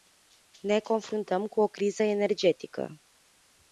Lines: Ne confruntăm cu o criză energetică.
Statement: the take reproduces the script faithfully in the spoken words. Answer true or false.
true